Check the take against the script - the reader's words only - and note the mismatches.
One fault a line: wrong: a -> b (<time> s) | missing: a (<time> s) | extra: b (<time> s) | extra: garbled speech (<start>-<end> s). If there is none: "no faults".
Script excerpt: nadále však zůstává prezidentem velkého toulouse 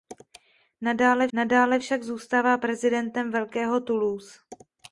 extra: nadále (1.3 s)